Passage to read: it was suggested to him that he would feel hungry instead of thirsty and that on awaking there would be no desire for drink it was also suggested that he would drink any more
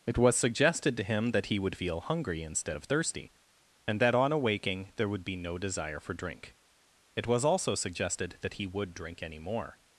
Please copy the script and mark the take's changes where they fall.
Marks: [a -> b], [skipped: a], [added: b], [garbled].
it was suggested to him that he would feel hungry instead of thirsty and that on awaking there would be no desire for drink it was also suggested that he would drink any more